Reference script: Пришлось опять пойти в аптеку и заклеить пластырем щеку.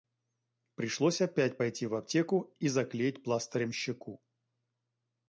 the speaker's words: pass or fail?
pass